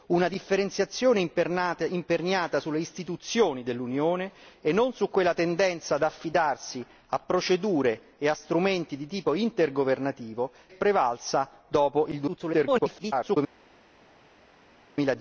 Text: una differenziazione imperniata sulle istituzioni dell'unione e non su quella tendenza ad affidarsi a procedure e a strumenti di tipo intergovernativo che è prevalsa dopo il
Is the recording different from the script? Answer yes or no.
yes